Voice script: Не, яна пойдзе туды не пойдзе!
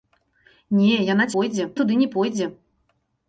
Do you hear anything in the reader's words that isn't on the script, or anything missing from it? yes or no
no